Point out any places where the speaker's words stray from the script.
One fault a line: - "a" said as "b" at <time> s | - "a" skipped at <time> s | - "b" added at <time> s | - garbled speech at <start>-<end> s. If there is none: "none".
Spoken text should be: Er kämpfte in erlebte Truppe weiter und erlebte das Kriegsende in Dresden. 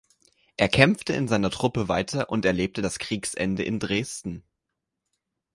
- "erlebte" said as "seiner" at 1.3 s